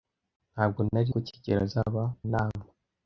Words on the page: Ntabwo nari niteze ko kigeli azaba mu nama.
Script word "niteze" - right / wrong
wrong